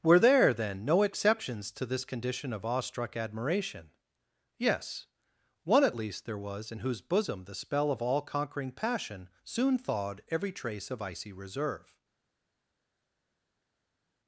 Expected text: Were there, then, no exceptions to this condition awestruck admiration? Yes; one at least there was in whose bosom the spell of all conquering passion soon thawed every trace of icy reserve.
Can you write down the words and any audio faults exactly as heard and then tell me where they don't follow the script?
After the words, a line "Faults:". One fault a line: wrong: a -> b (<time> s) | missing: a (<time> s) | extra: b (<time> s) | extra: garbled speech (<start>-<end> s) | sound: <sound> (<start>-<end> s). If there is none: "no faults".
Were there, then, no exceptions to this condition of awestruck admiration? Yes; one at least there was in whose bosom the spell of all conquering passion soon thawed every trace of icy reserve.
Faults:
extra: of (2.5 s)